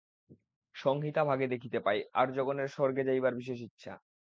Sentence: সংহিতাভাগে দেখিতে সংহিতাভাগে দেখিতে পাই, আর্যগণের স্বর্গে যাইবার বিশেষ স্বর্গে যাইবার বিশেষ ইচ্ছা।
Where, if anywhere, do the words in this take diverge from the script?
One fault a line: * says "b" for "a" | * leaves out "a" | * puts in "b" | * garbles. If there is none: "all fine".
* leaves out "সংহিতাভাগে দেখিতে"
* leaves out "স্বর্গে যাইবার বিশেষ"